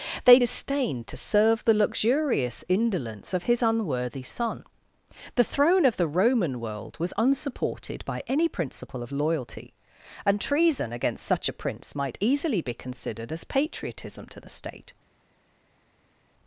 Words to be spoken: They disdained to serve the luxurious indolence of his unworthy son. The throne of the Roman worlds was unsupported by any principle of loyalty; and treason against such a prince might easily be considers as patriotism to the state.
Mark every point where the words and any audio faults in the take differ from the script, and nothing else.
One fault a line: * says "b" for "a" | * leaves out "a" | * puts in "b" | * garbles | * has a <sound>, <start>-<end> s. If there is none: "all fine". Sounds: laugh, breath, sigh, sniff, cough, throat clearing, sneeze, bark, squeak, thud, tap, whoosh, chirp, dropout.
* says "world" for "worlds"
* says "considered" for "considers"